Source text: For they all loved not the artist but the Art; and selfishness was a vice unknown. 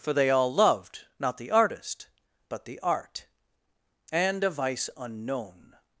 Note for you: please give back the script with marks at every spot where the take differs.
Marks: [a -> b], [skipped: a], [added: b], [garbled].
For they all loved not the artist but the Art; and [skipped: selfishness was] a vice unknown.